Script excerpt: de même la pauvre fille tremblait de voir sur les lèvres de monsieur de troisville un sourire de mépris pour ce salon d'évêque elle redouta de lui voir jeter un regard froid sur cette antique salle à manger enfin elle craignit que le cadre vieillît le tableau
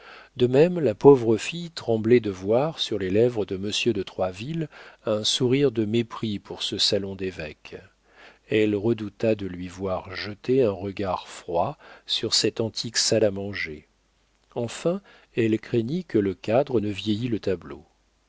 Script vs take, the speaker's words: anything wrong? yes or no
yes